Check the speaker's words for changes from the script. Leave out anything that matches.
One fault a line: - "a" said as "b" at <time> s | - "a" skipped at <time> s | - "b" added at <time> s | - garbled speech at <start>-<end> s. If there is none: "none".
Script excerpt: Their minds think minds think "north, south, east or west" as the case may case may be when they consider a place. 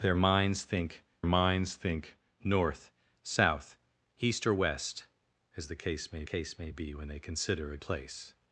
none